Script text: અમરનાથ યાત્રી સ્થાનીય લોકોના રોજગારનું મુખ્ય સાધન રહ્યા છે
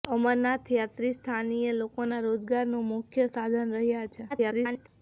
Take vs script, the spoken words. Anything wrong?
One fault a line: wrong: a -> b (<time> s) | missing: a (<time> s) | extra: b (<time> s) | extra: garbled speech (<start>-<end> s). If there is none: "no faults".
extra: garbled speech (4.3-4.9 s)